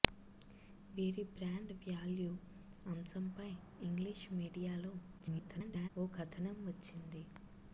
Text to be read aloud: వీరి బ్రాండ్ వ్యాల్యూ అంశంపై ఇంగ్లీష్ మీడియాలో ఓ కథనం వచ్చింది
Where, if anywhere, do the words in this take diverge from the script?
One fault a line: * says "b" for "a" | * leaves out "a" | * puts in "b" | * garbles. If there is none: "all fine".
* garbles